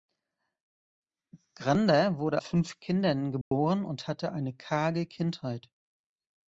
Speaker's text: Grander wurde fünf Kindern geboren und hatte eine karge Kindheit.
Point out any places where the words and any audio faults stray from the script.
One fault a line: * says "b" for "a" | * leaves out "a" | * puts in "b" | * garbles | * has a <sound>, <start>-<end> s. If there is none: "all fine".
* has a dropout, 3.4-3.5 s